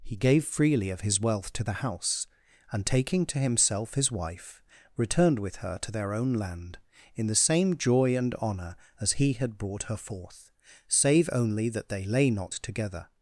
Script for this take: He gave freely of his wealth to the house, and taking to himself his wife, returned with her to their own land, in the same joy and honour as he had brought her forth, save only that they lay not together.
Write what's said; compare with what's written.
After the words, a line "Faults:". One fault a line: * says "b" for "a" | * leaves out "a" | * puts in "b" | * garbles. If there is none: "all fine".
He gave freely of his wealth to the house, and taking to himself his wife, returned with her to their own land, in the same joy and honour as he had brought her forth, save only that they lay not together.
Faults:
all fine